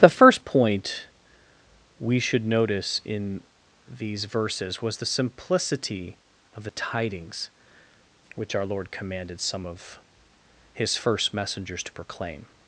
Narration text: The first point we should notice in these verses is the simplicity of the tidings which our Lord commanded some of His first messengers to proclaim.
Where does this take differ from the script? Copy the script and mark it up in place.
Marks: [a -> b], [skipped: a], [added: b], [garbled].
The first point we should notice in these verses [is -> was] the simplicity of the tidings which our Lord commanded some of His first messengers to proclaim.